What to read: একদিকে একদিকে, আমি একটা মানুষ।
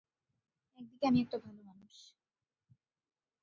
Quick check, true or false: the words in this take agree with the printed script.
false